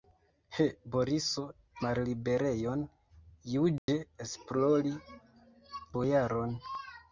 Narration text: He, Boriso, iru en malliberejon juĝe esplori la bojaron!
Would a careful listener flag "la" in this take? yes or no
yes